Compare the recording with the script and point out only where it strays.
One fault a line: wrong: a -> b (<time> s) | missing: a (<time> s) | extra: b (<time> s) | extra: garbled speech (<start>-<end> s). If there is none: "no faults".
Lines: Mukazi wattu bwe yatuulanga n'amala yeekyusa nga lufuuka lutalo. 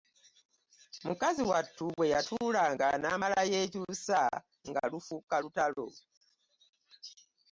no faults